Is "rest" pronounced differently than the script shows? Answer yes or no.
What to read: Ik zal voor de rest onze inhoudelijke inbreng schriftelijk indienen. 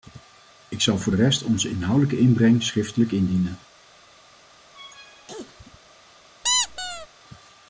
no